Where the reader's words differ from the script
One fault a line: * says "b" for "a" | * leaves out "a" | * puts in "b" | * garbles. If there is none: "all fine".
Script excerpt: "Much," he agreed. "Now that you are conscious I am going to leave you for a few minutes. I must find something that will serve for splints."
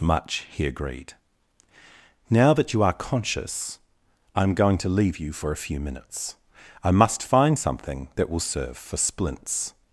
all fine